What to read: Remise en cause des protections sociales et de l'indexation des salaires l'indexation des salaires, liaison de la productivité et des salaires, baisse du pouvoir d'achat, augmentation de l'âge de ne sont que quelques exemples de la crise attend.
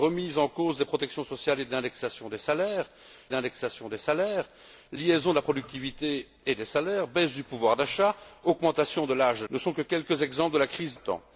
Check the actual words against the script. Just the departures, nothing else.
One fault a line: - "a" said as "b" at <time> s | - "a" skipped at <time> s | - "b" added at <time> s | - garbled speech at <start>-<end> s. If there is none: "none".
none